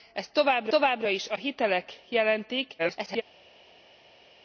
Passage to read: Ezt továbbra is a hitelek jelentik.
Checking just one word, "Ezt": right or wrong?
right